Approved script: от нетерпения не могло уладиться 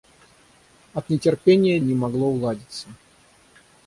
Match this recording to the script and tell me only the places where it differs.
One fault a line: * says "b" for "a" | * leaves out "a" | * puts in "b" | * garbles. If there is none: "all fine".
all fine